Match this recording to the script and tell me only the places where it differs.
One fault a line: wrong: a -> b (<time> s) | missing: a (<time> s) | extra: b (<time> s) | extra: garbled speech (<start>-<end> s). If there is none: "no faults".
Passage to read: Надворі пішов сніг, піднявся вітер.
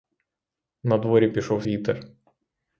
missing: сніг піднявся (1.6 s)